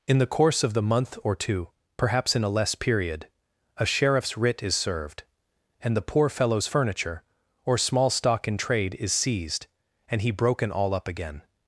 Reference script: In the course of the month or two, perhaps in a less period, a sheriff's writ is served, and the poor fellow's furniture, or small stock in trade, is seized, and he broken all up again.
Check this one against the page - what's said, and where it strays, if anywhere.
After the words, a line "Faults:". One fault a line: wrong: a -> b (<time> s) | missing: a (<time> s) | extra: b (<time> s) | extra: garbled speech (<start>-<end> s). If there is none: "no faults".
In the course of the month or two, perhaps in a less period, a sheriff's writ is served, and the poor fellow's furniture, or small stock in trade, is seized, and he broken all up again.
Faults:
no faults